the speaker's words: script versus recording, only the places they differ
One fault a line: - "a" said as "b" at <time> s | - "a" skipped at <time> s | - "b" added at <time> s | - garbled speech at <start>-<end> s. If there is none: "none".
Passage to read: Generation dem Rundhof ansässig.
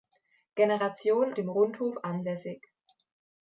none